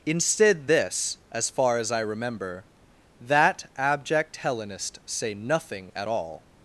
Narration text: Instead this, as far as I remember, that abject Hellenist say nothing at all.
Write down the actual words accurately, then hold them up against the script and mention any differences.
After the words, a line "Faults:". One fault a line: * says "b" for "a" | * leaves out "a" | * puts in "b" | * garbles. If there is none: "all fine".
Instead this, as far as I remember, that abject Hellenist say nothing at all.
Faults:
all fine